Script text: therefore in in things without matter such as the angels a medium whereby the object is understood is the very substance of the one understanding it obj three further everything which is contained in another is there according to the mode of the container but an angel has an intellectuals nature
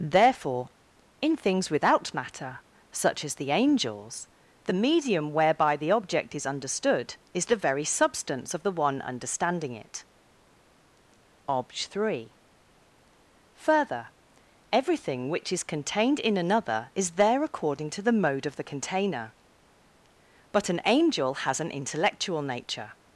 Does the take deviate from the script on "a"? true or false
true